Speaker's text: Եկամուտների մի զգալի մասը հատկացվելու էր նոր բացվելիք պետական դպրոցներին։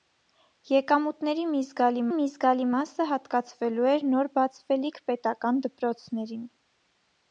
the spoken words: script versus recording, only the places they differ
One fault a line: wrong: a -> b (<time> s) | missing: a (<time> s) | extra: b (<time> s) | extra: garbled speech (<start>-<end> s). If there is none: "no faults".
extra: մի զգալի (2.1 s)